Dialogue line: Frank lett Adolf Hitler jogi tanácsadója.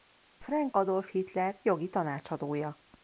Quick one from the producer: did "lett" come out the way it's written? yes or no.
no